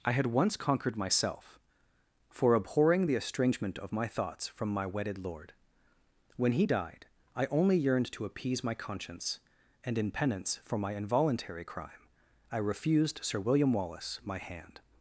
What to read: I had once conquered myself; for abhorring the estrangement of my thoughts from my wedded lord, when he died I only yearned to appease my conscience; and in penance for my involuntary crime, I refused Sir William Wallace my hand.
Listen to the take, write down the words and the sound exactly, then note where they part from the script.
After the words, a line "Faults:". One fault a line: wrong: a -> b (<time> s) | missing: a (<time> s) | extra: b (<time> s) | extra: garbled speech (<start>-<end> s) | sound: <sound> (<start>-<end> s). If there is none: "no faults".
I had once conquered myself; for abhorring the estrangement of my thoughts from my wedded lord, when he died I only yearned to appease my conscience; and in penance for my involuntary crime, I refused Sir William Wallace my hand.
Faults:
no faults